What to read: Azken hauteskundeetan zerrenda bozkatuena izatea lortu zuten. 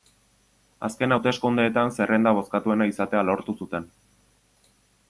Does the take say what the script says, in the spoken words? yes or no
yes